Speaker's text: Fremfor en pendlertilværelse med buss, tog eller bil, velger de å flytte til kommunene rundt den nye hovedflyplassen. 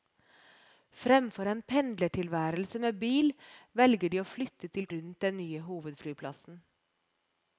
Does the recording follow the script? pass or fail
fail